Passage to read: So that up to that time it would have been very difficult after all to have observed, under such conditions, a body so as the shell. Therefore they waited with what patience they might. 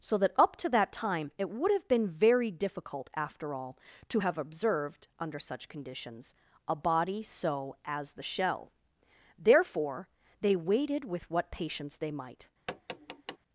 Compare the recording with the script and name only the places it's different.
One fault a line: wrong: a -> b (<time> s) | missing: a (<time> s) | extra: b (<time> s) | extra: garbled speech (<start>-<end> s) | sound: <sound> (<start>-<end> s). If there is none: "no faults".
sound: tap (12.7-13.4 s)